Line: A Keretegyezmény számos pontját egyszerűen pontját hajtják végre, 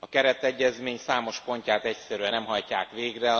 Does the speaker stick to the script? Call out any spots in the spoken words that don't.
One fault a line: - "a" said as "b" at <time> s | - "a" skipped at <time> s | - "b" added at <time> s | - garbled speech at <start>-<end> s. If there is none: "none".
- "pontját" said as "nem" at 2.3 s